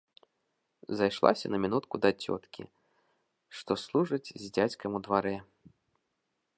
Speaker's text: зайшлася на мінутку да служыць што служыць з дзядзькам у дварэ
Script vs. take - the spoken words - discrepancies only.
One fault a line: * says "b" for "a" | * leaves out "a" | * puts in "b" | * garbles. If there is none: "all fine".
* says "цёткі" for "служыць"